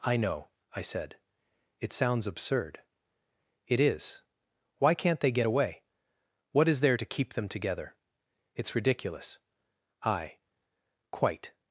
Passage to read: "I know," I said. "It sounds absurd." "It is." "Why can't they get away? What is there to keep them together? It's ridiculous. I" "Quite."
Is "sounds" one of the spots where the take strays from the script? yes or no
no